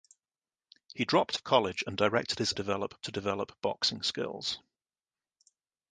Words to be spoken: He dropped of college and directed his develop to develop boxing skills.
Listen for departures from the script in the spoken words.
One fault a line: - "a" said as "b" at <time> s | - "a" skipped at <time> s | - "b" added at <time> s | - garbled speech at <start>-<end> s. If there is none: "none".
none